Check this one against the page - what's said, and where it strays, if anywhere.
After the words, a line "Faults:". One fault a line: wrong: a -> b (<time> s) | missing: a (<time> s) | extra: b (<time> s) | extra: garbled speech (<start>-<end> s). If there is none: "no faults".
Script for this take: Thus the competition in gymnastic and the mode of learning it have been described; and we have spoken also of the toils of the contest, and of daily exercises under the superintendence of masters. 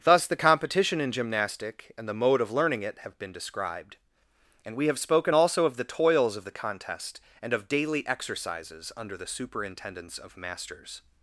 Thus the competition in gymnastic and the mode of learning it have been described; and we have spoken also of the toils of the contest, and of daily exercises under the superintendence of masters.
Faults:
no faults